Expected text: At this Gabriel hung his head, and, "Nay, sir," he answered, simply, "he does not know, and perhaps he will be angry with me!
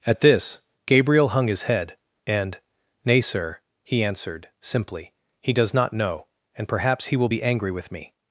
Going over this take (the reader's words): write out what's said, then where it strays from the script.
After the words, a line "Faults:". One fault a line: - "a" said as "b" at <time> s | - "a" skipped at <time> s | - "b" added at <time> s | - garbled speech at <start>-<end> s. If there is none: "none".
At this Gabriel hung his head, and, "Nay, sir," he answered, simply, "he does not know, and perhaps he will be angry with me!
Faults:
none